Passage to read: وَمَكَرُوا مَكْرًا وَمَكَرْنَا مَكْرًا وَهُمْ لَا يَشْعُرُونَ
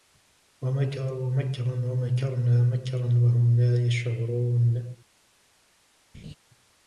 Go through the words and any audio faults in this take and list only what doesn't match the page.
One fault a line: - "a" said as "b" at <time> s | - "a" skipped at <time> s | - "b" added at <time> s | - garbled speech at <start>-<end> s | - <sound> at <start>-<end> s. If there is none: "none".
- laugh at 6.1-6.4 s